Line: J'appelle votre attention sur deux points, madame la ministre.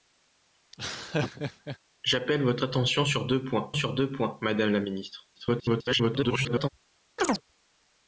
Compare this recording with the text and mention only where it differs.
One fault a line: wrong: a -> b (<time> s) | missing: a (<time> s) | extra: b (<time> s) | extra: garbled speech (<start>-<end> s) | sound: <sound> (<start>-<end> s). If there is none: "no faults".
sound: laugh (0.7-1.8 s)
extra: sur deux points (3.7 s)
extra: garbled speech (5.3-6.7 s)
sound: chirp (7.2-7.4 s)